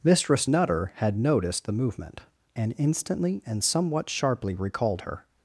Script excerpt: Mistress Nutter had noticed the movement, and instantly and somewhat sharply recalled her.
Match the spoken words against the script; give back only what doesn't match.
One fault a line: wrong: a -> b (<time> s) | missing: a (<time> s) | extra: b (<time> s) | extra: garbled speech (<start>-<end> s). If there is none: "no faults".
no faults